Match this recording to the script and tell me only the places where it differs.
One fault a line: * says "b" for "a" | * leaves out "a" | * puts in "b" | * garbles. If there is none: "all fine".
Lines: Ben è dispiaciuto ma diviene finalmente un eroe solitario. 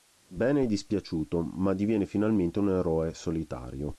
all fine